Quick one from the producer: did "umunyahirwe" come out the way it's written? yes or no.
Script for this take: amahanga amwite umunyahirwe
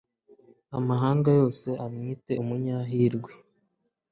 yes